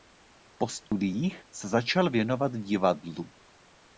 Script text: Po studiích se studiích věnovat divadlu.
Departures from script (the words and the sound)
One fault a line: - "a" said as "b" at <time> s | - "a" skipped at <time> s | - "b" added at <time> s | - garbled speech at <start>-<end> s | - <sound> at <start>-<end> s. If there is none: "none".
- dropout at 0.9-0.9 s
- "studiích" said as "začal" at 1.7 s